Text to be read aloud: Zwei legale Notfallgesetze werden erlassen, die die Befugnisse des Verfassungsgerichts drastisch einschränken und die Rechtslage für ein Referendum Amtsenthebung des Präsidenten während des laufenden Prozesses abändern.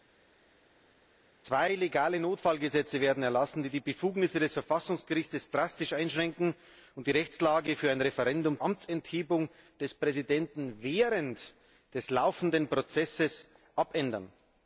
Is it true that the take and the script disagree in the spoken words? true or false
false